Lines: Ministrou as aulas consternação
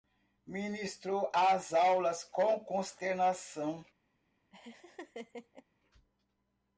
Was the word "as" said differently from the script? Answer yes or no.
no